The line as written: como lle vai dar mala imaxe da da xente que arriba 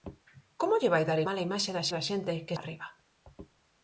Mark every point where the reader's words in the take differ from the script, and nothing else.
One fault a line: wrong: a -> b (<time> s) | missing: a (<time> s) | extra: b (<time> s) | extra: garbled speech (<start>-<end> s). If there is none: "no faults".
no faults